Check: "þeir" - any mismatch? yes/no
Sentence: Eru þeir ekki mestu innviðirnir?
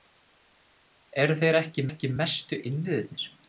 no